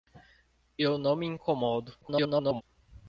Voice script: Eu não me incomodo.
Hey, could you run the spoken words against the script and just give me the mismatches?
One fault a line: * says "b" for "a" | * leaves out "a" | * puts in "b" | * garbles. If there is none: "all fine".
* garbles